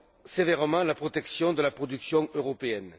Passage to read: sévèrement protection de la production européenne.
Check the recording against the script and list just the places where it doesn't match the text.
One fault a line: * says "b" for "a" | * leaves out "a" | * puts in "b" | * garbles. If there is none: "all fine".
* puts in "la"